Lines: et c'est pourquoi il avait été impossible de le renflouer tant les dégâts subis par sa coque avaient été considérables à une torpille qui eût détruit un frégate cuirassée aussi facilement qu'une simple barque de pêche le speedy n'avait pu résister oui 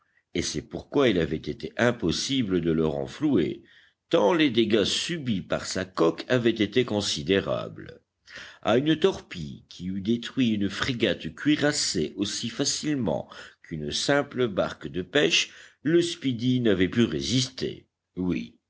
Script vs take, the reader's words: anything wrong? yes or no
yes